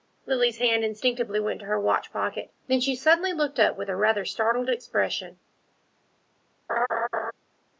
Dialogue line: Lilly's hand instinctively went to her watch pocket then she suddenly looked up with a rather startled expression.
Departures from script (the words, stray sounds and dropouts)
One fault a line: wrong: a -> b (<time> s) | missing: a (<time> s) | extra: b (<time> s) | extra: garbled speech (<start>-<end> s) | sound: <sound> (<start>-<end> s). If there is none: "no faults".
sound: laugh (6.7-7.3 s)